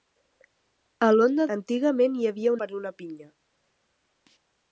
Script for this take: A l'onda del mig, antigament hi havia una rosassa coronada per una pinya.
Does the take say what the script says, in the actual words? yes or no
no